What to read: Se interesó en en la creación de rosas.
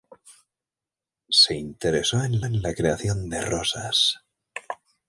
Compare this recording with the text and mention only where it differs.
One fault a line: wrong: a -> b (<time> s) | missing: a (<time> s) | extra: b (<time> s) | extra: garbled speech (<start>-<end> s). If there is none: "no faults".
no faults